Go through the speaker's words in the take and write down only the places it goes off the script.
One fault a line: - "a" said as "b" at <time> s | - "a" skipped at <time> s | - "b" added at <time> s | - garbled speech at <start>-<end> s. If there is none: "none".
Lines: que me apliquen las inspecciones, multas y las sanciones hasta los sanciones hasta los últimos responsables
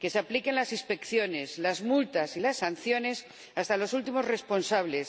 - "me" said as "se" at 0.1 s
- "las" added at 1.6 s
- "sanciones hasta los" skipped at 3.9 s